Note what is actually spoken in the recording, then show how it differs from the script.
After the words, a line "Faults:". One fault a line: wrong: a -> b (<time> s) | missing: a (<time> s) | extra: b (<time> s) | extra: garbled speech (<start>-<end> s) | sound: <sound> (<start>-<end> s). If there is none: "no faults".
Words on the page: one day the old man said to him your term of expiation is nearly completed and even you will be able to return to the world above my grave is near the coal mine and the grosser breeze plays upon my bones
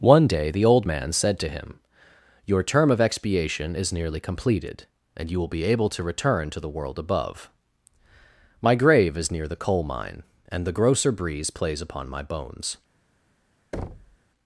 one day the old man said to him your term of expiation is nearly completed and you will be able to return to the world above my grave is near the coal mine and the grosser breeze plays upon my bones
Faults:
missing: even (5.3 s)
sound: thud (13.7-14.2 s)